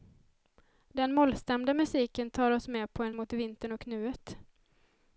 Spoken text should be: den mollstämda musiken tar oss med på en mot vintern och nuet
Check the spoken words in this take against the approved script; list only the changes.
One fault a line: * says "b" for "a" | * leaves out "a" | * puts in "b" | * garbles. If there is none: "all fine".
all fine